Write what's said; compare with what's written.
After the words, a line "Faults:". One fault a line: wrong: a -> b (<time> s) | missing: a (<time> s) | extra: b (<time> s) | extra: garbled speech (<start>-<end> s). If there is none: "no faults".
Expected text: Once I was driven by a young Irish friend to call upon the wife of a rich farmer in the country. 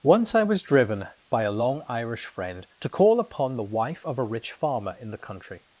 Once I was driven by a long Irish friend to call upon the wife of a rich farmer in the country.
Faults:
wrong: young -> long (1.5 s)